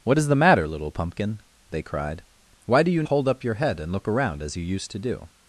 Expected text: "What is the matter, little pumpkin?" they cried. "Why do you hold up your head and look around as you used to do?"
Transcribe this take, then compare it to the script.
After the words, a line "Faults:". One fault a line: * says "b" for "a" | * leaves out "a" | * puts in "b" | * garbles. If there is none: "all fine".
"What is the matter, little pumpkin?" they cried. "Why do you hold up your head and look around as you used to do?"
Faults:
all fine